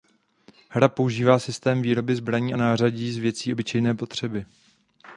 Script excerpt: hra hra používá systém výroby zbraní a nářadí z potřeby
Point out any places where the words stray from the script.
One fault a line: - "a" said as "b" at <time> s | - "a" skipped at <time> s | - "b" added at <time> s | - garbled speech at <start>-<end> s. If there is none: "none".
- "hra" skipped at 0.9 s
- "věcí obyčejné" added at 3.2 s